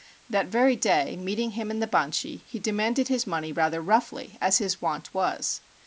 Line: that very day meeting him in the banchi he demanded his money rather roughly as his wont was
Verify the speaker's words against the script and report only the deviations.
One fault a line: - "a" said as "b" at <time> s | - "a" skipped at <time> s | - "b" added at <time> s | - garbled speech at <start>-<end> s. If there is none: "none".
none